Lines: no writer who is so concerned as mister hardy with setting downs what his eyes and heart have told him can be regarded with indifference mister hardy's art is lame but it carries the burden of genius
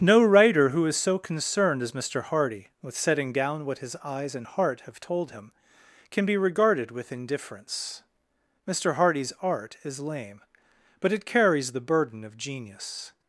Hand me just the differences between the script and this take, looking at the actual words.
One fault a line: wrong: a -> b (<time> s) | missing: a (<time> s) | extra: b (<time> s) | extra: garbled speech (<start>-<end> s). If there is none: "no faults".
wrong: downs -> down (3.3 s)